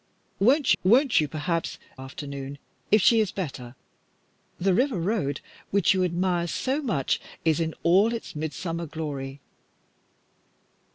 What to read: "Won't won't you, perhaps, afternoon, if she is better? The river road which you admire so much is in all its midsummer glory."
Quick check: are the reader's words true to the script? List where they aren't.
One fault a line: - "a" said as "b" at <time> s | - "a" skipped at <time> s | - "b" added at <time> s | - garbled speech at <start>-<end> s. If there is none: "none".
none